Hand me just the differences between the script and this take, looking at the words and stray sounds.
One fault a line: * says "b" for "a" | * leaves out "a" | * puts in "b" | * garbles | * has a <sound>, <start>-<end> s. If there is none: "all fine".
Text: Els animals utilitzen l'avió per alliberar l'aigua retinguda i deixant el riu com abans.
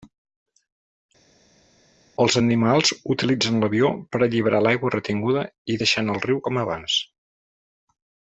all fine